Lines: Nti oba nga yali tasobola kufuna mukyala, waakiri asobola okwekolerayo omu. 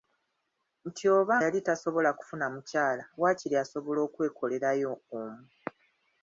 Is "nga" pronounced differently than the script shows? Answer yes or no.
yes